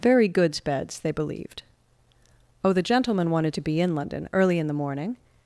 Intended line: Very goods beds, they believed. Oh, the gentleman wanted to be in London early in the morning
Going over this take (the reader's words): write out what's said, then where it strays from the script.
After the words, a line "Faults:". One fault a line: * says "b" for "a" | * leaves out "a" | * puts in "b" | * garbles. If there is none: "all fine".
Very goods beds, they believed. Oh, the gentleman wanted to be in London early in the morning
Faults:
all fine